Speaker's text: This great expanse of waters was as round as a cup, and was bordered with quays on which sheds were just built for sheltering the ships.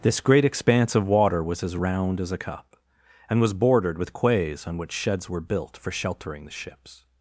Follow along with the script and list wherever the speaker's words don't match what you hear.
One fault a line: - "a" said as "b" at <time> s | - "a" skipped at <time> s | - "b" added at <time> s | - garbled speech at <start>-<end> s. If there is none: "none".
- "waters" said as "water" at 1.1 s
- "just" skipped at 5.4 s